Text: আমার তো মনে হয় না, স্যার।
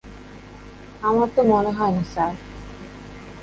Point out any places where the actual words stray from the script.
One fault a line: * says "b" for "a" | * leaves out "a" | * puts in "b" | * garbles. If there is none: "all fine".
all fine